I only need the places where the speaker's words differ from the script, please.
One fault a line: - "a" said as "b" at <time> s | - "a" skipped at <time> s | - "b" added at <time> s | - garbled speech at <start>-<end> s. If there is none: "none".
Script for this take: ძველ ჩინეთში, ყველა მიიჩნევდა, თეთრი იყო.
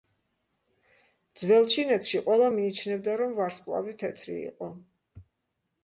- "რომ ვარსკვლავი" added at 3.2 s